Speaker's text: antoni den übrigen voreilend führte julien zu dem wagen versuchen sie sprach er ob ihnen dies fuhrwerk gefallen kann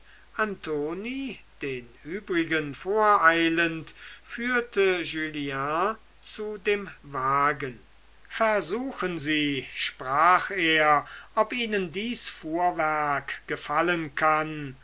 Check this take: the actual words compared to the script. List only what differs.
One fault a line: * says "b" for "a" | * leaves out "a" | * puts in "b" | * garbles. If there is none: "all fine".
all fine